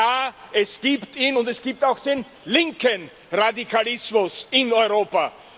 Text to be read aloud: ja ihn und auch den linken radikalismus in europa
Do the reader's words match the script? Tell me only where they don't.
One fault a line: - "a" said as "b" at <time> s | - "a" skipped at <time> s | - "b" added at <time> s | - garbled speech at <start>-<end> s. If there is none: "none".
- "es gibt" added at 0.5 s
- "es gibt" added at 1.5 s